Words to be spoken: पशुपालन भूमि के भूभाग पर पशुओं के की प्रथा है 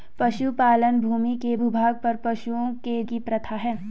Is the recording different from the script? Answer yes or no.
no